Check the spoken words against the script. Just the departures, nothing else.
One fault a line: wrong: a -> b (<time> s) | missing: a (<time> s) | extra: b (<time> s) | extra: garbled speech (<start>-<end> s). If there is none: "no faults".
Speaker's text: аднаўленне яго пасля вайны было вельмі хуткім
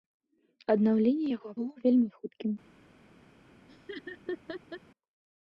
missing: пасля вайны (1.5 s)